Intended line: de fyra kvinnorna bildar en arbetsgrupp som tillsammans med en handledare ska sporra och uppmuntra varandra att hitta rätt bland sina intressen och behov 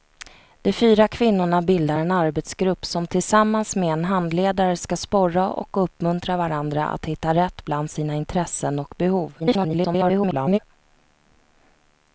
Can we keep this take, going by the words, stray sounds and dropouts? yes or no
no